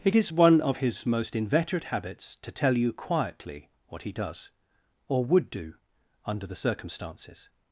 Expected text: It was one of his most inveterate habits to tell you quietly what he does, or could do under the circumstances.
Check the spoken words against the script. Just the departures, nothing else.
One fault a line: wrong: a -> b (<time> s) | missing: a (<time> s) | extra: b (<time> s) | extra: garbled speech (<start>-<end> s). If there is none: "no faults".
wrong: was -> is (0.1 s)
wrong: could -> would (5.2 s)